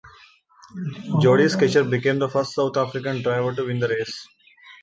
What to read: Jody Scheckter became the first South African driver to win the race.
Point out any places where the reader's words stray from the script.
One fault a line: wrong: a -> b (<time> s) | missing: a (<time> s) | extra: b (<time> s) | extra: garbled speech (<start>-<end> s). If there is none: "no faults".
no faults